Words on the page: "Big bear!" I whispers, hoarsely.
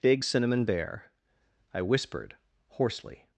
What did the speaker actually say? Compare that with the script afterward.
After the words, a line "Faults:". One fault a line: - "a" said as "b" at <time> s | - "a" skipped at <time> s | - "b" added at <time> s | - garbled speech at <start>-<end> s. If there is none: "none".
"Big cinnamon bear!" I whispered, hoarsely.
Faults:
- "cinnamon" added at 0.2 s
- "whispers" said as "whispered" at 1.8 s